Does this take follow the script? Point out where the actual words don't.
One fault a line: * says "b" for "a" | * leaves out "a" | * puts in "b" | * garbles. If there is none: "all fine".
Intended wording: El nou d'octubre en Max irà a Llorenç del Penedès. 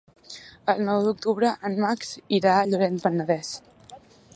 * leaves out "del"